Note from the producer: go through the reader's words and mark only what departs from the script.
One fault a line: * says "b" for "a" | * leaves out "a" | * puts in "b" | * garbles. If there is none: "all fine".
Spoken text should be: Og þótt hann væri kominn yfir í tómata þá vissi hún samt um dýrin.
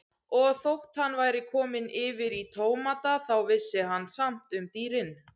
* says "hann" for "hún"